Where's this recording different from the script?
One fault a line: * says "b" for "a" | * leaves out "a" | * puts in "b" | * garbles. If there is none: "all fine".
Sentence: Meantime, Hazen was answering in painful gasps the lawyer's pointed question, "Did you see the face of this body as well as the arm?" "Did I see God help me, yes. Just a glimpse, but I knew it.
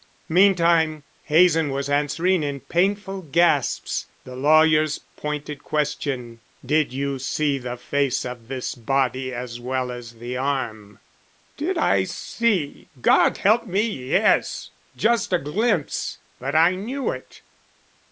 all fine